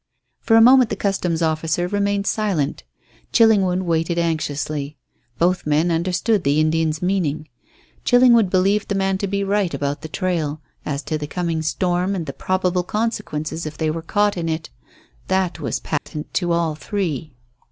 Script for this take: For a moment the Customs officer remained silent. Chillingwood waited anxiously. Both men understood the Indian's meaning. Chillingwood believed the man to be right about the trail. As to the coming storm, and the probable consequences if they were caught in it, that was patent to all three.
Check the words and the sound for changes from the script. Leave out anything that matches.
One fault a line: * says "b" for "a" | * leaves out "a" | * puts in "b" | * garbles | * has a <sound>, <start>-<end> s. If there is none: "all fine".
* has a dropout, 16.0-16.1 s